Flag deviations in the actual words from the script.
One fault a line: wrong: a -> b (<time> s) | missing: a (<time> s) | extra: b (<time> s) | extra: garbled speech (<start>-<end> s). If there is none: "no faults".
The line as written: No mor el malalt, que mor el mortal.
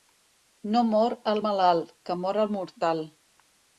no faults